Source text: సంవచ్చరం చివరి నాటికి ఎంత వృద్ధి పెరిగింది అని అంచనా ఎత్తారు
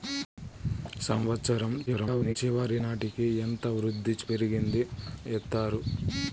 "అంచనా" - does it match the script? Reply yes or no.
no